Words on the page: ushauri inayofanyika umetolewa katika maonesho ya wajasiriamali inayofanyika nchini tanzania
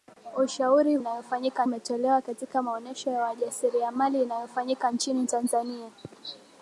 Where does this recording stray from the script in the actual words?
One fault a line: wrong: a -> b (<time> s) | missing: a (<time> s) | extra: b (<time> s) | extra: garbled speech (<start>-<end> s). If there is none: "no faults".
no faults